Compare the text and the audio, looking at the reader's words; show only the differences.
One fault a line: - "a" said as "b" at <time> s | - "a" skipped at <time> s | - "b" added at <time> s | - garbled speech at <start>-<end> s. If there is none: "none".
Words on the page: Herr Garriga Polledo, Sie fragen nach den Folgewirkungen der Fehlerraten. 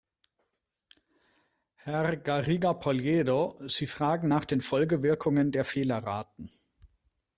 none